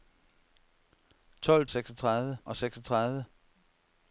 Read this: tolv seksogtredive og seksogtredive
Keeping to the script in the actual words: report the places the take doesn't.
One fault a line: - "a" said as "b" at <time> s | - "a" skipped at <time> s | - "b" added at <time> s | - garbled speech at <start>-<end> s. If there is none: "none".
none